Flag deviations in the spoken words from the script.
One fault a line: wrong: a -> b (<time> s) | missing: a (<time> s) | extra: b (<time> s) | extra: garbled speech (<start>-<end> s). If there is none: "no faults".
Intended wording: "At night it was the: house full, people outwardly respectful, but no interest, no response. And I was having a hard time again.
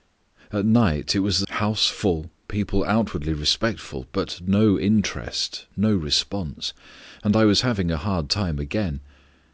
no faults